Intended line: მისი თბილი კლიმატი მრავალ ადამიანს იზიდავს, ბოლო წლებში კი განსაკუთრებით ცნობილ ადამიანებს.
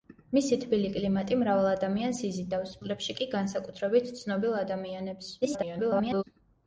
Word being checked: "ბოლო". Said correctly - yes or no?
no